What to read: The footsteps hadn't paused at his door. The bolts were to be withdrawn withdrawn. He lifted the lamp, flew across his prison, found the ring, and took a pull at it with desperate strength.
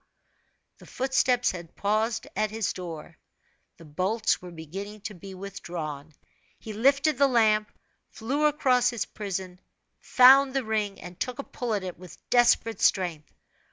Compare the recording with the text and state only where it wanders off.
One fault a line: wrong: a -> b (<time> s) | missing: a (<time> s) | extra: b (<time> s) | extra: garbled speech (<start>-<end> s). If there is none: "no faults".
wrong: hadn't -> had (1.5 s)
extra: beginning (4.5 s)
missing: withdrawn (6.1 s)